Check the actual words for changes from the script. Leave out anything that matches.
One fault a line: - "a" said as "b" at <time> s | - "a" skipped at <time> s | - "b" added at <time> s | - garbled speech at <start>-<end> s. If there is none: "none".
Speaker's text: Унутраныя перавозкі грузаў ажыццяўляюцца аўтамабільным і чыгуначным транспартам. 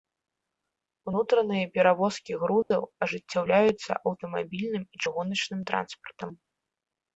none